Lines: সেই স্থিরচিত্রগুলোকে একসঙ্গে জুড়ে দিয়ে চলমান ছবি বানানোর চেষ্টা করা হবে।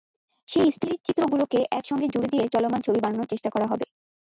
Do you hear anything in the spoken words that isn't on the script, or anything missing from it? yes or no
no